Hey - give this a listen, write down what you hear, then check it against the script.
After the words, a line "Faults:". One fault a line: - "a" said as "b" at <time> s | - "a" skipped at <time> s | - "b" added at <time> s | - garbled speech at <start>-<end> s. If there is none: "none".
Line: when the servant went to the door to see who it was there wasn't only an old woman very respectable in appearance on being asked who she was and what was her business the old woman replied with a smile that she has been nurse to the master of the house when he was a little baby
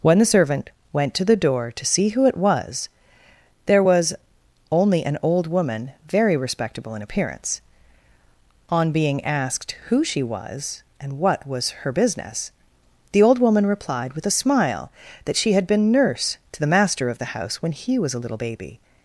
when the servant went to the door to see who it was there was only an old woman very respectable in appearance on being asked who she was and what was her business the old woman replied with a smile that she had been nurse to the master of the house when he was a little baby
Faults:
- "wasn't" said as "was" at 3.8 s
- "has" said as "had" at 15.5 s